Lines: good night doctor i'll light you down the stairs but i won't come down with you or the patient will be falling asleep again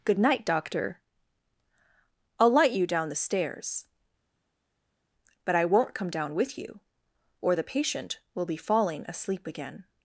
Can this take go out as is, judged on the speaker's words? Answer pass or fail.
pass